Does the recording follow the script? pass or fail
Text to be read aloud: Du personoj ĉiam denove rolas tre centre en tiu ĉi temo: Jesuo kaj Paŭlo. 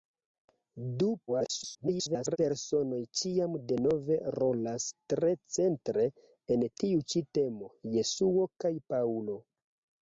fail